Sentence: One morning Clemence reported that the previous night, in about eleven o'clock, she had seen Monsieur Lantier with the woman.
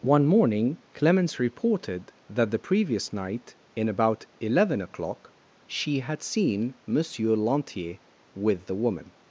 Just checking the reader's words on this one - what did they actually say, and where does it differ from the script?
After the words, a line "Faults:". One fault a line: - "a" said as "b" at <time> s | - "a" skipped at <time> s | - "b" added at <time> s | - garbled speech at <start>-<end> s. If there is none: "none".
One morning Clemence reported that the previous night, in about eleven o'clock, she had seen Monsieur Lantier with the woman.
Faults:
none